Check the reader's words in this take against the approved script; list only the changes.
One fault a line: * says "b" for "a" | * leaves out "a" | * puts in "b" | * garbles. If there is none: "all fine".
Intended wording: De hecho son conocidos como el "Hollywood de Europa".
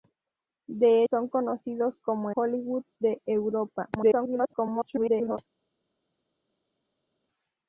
* leaves out "hecho"
* leaves out "el"
* garbles